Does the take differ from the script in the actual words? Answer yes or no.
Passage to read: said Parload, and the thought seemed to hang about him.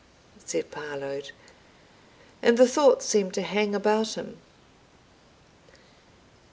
no